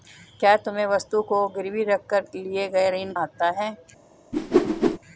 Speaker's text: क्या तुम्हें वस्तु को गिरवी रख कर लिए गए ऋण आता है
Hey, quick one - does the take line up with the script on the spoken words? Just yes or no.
yes